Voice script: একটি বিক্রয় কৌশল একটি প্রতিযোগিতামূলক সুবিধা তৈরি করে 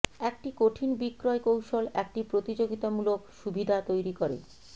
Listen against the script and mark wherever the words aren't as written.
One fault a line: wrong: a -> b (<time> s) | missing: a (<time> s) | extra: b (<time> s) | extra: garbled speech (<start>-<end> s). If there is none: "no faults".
extra: কঠিন (0.6 s)